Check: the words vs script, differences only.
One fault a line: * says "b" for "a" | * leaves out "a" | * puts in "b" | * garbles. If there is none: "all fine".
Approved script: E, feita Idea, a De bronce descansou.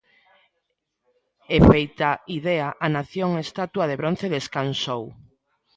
* puts in "Nación estatua"